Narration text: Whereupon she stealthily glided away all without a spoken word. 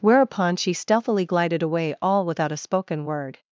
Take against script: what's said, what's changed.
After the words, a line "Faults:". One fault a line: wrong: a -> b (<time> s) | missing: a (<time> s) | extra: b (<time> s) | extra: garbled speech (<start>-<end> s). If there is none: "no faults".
Whereupon she stealthily glided away all without a spoken word.
Faults:
no faults